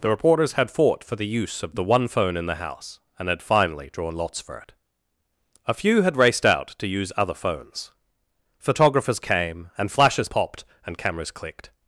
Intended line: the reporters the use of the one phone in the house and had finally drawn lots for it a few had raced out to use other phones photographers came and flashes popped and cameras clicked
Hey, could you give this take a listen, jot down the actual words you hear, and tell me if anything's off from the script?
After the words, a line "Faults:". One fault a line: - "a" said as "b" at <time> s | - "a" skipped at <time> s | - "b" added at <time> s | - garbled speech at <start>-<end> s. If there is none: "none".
the reporters had fought for the use of the one phone in the house and had finally drawn lots for it a few had raced out to use other phones photographers came and flashes popped and cameras clicked
Faults:
- "had fought for" added at 0.5 s